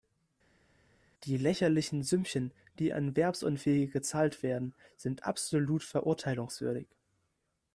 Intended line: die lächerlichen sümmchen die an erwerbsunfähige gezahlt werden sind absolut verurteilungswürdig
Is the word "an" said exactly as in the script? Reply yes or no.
no